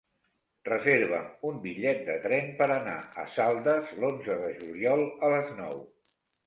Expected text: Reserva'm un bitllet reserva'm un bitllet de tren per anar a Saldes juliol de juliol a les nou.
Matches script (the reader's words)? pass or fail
fail